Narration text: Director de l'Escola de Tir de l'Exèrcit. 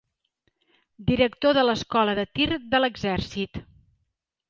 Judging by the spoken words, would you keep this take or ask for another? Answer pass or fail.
pass